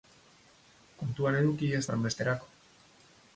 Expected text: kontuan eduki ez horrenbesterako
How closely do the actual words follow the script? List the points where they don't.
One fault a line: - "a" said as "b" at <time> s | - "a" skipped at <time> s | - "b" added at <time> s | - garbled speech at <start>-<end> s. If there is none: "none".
none